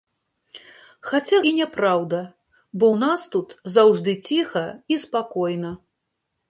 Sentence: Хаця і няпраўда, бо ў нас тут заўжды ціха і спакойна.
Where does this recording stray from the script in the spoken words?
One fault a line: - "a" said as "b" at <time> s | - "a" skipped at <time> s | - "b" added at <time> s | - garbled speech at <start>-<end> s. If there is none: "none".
none